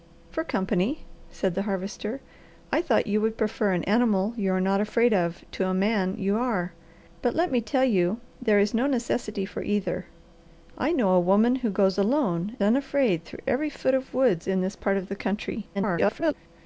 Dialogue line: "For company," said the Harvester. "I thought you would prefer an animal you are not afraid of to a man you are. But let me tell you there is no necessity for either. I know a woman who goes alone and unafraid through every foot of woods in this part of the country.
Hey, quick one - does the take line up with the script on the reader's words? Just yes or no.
no